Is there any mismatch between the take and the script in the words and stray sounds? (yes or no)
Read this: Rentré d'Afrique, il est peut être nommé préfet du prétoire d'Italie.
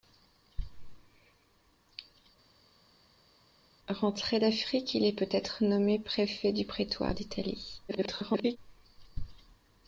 yes